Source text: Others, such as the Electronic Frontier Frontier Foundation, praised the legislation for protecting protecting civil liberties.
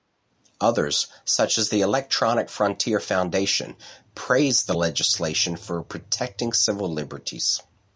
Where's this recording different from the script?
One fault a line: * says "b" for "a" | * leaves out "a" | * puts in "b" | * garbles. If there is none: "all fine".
* leaves out "Frontier"
* leaves out "protecting"